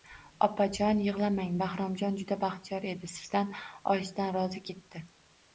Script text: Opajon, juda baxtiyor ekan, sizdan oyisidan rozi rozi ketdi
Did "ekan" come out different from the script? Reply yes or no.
yes